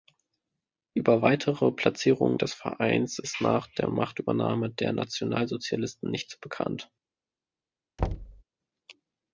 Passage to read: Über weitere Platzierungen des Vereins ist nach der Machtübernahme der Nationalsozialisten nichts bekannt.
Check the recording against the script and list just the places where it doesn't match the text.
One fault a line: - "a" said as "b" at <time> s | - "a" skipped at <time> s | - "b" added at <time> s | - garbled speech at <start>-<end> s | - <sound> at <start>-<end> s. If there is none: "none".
- thud at 8.0-8.4 s